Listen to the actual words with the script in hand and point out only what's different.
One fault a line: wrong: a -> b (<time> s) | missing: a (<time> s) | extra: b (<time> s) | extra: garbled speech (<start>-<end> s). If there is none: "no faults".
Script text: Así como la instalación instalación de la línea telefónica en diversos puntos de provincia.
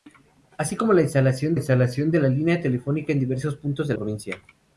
no faults